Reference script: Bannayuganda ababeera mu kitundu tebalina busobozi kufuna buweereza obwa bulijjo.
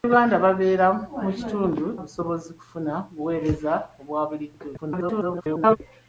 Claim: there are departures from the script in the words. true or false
true